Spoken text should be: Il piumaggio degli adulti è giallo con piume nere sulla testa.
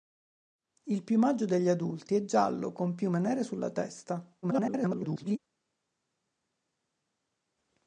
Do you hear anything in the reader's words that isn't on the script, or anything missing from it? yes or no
yes